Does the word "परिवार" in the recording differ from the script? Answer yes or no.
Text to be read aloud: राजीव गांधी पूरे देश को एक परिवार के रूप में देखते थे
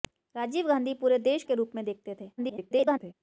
yes